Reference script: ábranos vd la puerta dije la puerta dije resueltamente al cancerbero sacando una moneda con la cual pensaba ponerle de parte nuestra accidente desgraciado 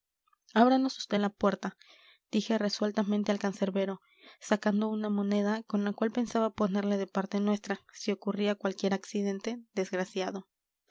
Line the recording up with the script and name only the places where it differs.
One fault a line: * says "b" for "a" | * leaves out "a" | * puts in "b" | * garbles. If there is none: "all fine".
* leaves out "la puerta dije"
* puts in "si ocurría cualquier"